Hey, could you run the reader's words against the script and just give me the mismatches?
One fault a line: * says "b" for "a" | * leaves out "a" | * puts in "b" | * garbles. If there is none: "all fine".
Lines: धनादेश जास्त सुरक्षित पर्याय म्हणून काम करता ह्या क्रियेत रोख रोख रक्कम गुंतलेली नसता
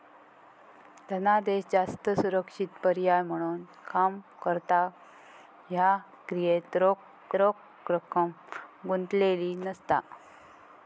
all fine